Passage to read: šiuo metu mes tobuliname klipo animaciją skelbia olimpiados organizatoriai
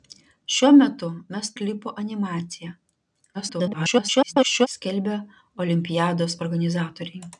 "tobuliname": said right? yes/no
no